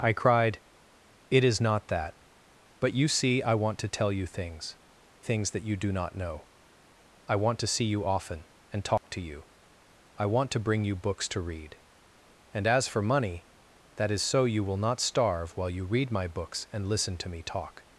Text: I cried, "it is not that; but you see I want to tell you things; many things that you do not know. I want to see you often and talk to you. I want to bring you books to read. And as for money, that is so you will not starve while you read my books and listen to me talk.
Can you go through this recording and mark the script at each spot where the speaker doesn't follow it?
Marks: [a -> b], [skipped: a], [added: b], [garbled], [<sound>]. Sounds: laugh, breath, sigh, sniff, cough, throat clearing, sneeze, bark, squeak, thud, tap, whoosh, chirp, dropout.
I cried, "it is not that; but you see I want to tell you things; [skipped: many] things that you do not know. I want to see you often and talk [dropout] to you. I want to bring you books to read. And as for money, that is so you will not starve while you read my books and listen to me talk.